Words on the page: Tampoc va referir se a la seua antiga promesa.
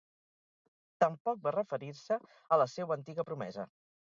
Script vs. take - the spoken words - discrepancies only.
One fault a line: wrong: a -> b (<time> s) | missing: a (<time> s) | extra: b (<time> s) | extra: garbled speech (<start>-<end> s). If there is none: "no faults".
no faults